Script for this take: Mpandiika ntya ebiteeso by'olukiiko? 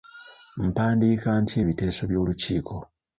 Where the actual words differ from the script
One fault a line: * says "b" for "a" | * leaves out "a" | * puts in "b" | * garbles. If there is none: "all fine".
all fine